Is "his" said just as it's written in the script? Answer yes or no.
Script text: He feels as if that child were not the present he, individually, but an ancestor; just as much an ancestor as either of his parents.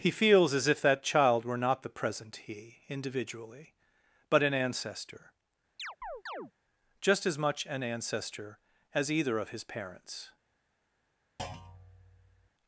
yes